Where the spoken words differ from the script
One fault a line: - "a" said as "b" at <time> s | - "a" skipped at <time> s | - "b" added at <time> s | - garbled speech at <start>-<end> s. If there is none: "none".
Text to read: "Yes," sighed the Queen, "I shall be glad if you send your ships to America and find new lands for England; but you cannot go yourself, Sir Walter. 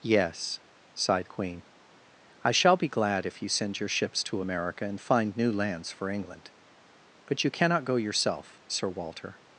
none